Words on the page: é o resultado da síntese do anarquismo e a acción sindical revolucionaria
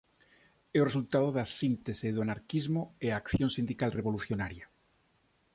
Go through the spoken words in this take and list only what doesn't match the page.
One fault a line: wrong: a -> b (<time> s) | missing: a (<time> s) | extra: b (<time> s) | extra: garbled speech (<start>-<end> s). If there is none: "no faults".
no faults